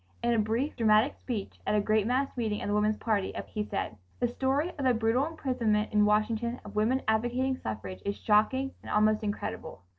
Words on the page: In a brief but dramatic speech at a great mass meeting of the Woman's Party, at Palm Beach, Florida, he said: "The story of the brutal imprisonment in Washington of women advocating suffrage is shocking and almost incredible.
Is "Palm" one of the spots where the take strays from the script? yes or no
yes